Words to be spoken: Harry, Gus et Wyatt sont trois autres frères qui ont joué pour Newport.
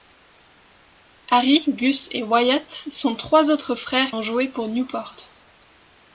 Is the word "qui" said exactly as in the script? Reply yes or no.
no